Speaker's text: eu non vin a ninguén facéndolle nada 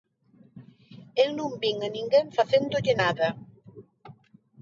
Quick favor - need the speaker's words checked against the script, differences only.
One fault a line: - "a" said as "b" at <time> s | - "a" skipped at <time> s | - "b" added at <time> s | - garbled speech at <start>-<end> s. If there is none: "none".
none